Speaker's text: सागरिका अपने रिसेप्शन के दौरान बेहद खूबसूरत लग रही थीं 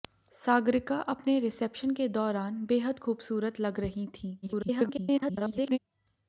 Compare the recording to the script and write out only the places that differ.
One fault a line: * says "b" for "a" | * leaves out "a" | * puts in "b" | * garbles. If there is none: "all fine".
* garbles